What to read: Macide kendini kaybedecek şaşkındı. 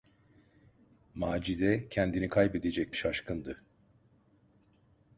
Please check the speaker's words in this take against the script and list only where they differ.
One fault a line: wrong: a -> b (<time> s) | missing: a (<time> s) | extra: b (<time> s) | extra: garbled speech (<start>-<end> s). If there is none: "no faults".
no faults